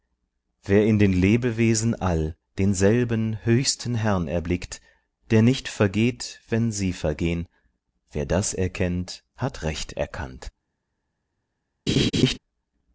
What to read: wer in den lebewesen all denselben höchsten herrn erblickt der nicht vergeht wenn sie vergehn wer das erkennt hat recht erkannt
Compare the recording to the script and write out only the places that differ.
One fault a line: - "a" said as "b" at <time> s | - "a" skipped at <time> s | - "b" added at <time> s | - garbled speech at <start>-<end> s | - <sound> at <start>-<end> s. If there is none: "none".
- laugh at 11.9-12.4 s